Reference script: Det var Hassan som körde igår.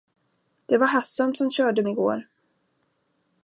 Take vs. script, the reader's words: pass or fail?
pass